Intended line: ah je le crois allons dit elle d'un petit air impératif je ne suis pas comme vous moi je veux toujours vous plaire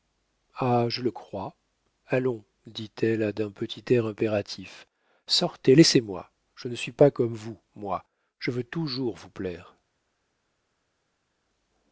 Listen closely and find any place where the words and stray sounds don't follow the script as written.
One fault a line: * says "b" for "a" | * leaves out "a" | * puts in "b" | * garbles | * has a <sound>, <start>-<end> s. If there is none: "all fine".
* puts in "sortez laissez moi"